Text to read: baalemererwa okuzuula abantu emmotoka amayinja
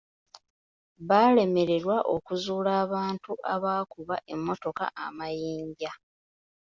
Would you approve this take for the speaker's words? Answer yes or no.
no